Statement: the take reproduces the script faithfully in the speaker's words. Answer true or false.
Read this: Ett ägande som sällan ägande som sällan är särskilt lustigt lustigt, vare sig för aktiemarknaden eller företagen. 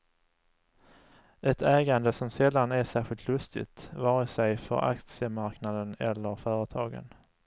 false